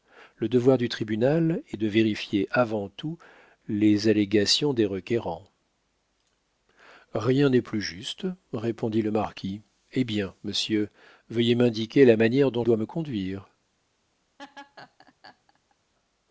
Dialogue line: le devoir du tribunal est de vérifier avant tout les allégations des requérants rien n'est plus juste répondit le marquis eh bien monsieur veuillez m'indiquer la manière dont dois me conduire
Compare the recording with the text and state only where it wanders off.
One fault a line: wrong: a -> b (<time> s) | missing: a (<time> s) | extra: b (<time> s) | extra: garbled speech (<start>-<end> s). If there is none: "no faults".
no faults